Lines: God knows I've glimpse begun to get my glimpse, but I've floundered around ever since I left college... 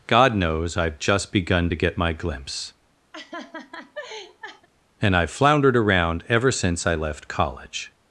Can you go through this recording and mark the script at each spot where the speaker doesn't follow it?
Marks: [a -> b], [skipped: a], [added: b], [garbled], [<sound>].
God knows I've [glimpse -> just] begun to get my glimpse, [laugh] [but -> and] I've floundered around ever since I left college...